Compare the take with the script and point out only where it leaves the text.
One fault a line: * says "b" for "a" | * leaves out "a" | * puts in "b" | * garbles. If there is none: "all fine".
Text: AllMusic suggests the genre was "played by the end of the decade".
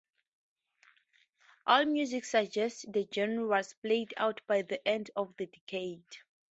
* puts in "out"